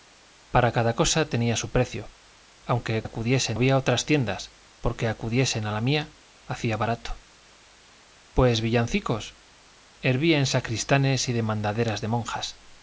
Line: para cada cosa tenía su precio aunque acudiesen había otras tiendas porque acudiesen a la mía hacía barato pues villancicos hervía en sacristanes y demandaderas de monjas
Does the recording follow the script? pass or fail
pass